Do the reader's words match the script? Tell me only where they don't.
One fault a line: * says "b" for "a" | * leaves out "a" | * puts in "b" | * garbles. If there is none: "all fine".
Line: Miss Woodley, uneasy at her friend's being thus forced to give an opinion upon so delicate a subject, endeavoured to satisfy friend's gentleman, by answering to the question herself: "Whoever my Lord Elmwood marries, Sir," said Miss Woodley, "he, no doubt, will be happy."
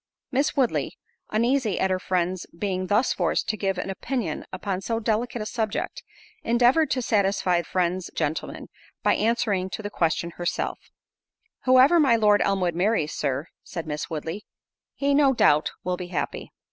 all fine